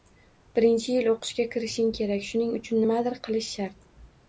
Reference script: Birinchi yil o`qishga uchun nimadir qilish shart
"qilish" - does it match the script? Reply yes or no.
yes